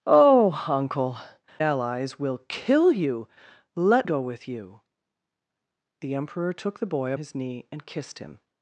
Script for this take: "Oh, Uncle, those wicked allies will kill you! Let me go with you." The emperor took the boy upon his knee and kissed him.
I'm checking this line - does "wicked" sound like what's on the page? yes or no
no